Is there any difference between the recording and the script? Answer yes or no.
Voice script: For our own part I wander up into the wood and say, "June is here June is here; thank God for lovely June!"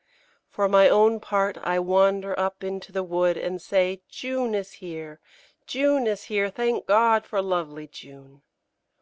yes